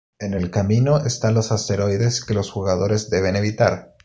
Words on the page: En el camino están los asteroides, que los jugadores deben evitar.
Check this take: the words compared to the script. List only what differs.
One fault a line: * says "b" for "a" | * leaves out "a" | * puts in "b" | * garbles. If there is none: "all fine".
all fine